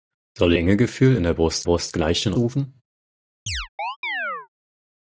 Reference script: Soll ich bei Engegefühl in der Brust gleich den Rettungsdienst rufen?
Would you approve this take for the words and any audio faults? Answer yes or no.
no